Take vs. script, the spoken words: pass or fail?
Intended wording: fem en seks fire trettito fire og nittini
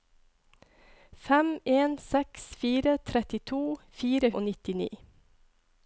pass